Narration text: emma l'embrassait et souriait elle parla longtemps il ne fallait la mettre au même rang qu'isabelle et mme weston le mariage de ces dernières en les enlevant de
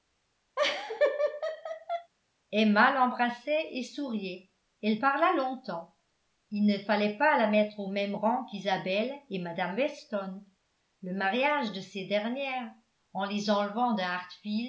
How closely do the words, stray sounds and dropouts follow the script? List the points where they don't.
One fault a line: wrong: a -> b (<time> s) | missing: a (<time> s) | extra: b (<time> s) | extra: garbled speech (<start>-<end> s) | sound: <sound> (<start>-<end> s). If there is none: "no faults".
sound: laugh (0.6-2.1 s)
extra: pas (7.2 s)